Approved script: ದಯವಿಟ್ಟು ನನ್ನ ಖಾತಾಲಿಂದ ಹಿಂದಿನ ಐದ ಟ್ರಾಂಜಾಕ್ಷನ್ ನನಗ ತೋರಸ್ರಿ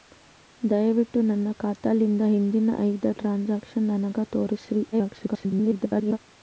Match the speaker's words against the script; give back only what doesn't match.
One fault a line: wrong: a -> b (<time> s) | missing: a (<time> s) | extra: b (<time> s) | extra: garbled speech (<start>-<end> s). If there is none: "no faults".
extra: garbled speech (4.9-6.2 s)